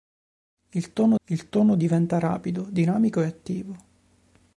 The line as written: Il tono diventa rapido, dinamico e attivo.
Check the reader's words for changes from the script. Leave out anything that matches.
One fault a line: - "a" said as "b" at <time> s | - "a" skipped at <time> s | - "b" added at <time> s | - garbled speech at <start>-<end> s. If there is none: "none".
- "il tono" added at 1.3 s